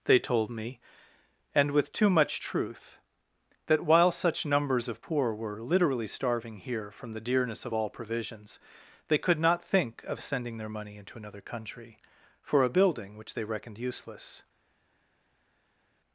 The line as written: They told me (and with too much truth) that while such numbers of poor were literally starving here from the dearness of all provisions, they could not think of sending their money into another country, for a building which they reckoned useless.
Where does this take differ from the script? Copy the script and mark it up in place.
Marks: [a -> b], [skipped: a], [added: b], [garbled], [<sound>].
They told me (and with too much truth) that while such numbers of poor were literally starving here from the dearness of all provisions, they could not think of sending their money into another country, for a building which they reckoned useless.